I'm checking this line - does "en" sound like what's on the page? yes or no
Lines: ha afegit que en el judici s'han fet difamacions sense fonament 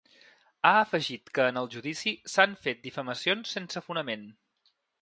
yes